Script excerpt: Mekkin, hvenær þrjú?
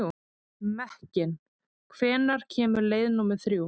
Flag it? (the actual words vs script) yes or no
yes